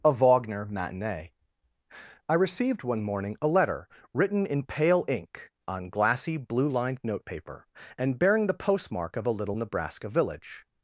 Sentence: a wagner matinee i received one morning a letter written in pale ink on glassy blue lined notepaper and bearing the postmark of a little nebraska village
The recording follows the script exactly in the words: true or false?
true